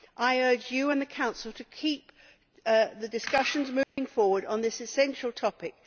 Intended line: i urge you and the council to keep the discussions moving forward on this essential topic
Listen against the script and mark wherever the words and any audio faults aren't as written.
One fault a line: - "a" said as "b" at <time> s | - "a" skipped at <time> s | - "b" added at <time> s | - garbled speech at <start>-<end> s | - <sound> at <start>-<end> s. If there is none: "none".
- dropout at 3.8-4.0 s